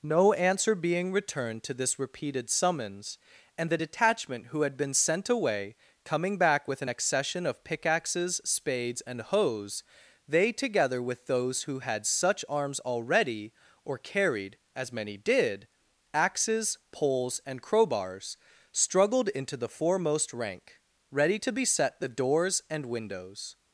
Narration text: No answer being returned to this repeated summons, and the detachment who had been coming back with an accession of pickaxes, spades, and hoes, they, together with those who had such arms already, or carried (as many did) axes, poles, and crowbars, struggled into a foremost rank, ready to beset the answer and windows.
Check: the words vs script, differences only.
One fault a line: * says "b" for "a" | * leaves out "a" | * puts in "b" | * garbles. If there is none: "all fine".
* puts in "sent away"
* says "the" for "a"
* says "doors" for "answer"